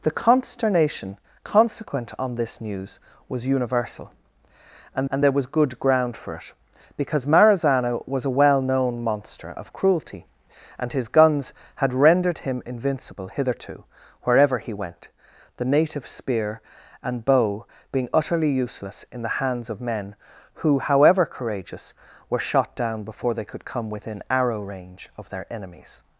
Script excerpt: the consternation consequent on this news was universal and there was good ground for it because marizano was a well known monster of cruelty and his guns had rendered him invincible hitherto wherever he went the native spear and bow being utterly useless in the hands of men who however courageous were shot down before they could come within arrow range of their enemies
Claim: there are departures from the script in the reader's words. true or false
true